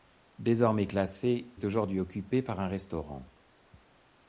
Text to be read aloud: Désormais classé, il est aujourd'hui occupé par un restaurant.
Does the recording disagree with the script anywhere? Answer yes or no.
yes